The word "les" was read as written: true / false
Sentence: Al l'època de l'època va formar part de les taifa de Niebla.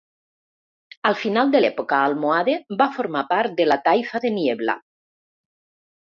false